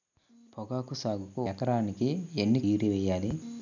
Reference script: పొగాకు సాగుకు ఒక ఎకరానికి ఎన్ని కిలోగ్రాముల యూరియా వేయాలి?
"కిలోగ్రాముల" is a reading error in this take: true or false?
true